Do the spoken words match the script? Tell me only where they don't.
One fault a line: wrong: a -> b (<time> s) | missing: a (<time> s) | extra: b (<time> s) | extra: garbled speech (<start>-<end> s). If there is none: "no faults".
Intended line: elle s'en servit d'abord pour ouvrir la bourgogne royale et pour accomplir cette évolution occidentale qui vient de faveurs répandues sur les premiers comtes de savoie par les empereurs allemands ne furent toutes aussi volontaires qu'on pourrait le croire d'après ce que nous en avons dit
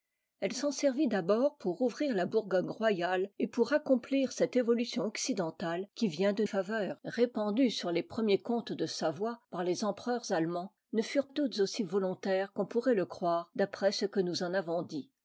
no faults